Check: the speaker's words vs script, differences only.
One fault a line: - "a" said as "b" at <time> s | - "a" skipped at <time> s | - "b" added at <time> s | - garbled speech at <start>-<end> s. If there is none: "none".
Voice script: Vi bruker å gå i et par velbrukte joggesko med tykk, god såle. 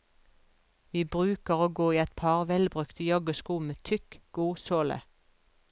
none